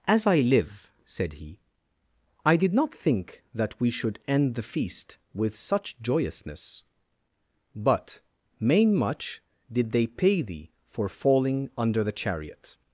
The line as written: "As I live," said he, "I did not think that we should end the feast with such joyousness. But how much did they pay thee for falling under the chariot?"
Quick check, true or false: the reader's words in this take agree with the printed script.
false